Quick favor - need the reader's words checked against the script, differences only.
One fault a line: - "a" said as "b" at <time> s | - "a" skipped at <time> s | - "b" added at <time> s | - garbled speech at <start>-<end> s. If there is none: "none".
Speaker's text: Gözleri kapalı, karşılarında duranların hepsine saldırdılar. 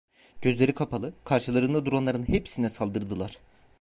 none